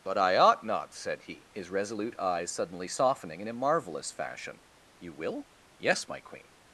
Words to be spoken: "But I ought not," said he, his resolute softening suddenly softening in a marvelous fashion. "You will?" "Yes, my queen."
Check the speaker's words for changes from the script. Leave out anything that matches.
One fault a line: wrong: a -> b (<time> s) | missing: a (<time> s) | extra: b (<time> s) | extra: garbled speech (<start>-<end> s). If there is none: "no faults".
wrong: softening -> eyes (2.2 s)